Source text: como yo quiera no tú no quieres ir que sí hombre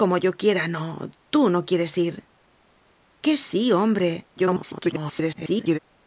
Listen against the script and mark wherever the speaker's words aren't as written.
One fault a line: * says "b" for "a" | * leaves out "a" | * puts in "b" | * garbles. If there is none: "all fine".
* garbles